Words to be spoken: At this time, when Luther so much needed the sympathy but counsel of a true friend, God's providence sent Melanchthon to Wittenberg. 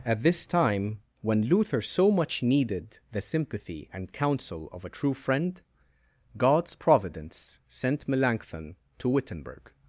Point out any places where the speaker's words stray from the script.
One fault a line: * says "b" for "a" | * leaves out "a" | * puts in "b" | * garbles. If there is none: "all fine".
* says "and" for "but"